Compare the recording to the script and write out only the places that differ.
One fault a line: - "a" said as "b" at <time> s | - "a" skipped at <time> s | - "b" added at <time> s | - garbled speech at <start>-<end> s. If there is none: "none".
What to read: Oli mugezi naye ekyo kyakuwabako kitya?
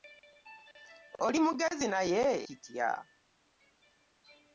- "ekyo kyakuwabako" skipped at 2.2 s